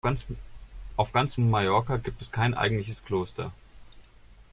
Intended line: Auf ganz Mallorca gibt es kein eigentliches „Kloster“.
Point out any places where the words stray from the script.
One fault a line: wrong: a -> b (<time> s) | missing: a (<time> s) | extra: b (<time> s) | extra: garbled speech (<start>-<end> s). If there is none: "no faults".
no faults